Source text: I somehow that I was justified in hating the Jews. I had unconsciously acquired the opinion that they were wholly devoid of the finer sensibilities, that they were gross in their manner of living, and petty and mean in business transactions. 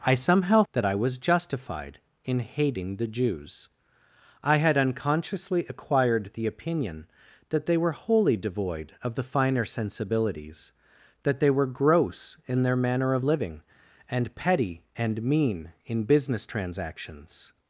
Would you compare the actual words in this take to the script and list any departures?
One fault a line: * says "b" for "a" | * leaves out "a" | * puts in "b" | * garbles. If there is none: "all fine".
all fine